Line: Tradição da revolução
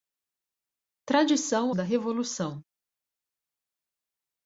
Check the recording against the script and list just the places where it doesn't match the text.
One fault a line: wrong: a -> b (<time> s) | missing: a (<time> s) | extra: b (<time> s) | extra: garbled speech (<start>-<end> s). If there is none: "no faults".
no faults